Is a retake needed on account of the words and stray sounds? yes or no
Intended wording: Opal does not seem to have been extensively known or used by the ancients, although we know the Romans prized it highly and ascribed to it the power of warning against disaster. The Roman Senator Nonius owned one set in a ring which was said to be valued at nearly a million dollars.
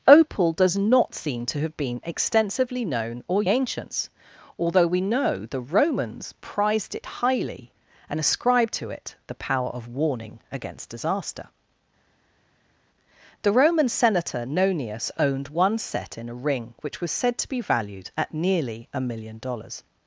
yes